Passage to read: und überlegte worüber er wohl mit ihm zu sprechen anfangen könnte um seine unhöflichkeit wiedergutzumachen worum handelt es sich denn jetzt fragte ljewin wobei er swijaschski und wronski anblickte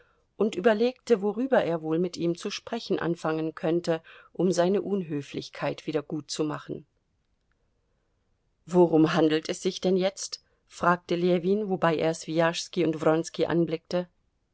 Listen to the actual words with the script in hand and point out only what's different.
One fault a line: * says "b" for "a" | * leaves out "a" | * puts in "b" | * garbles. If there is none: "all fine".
all fine